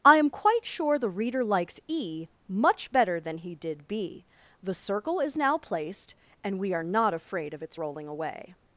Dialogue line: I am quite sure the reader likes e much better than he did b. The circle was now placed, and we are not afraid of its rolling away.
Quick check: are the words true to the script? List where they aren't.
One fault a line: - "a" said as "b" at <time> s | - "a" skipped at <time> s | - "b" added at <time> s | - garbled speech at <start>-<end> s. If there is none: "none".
- "was" said as "is" at 5.2 s